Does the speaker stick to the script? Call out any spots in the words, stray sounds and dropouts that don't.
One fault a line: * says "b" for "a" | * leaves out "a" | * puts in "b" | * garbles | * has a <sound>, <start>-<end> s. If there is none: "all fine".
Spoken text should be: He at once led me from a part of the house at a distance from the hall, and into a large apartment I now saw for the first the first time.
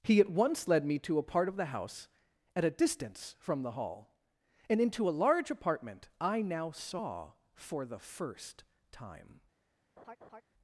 * says "to" for "from"
* leaves out "the first"
* has a laugh, 10.0-10.4 s